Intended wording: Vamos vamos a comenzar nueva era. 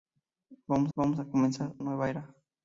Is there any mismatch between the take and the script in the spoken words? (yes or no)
no